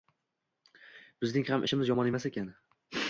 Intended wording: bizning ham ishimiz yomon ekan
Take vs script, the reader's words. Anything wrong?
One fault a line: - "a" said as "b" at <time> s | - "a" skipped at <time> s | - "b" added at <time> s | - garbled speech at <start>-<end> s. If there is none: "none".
- "emas" added at 2.1 s